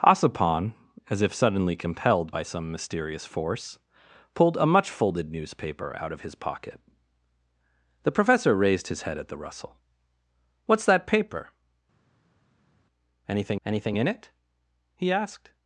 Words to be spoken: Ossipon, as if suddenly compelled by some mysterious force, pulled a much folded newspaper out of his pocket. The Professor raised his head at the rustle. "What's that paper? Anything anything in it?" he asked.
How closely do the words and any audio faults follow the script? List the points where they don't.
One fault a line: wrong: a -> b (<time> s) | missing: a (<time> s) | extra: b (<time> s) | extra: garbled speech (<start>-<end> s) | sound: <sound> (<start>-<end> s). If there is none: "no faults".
no faults